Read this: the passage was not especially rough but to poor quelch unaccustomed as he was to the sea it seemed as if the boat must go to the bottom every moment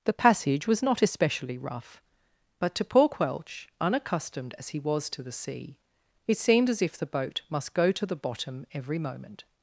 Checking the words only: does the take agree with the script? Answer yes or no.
yes